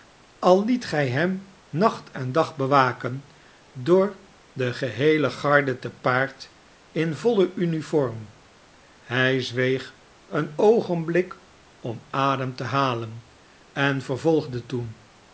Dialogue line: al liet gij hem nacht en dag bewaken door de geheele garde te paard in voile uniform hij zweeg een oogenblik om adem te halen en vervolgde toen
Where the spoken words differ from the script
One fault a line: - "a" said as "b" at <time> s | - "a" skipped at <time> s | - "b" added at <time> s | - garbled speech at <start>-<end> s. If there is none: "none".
none